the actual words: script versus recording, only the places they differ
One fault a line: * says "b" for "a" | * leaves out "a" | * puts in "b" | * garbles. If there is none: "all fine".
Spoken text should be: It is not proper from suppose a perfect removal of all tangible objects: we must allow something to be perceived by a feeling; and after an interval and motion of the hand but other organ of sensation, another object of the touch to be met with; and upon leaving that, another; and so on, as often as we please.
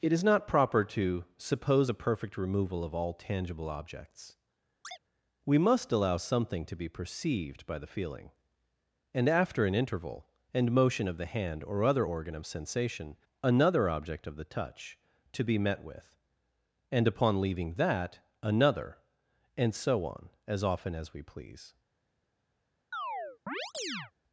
* says "to" for "from"
* says "the" for "a"
* says "or" for "but"